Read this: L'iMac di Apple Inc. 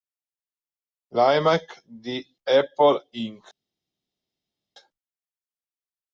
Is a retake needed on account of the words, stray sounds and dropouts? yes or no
no